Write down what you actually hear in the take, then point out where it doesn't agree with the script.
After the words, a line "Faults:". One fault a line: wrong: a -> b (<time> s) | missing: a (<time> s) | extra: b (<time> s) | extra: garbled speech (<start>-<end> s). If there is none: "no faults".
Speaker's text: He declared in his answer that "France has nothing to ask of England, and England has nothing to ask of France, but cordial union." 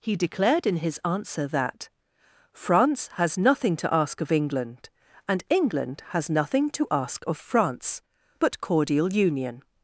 He declared in his answer that "France has nothing to ask of England, and England has nothing to ask of France, but cordial union."
Faults:
no faults